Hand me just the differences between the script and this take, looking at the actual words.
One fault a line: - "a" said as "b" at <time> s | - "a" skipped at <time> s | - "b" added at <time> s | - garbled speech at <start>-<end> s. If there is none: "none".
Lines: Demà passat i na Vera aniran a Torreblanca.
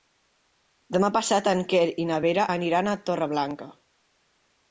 - "en Quer" added at 1.5 s